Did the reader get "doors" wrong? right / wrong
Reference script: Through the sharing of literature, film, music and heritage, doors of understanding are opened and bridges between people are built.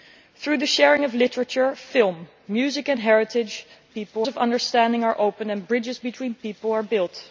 wrong